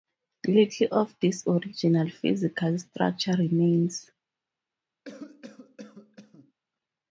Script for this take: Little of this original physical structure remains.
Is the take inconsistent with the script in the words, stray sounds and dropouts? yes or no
yes